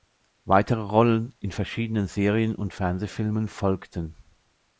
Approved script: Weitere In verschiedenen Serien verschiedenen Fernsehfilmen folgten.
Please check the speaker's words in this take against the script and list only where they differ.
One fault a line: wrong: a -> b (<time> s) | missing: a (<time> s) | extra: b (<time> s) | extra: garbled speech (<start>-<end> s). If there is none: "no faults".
extra: Rollen (0.8 s)
wrong: verschiedenen -> und (2.5 s)